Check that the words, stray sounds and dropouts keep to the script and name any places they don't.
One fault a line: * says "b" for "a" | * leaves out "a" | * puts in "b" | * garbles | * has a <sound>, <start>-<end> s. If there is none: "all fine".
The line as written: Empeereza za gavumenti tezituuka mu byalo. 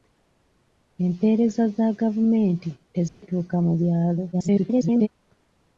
* has a dropout, 3.1-3.2 s
* garbles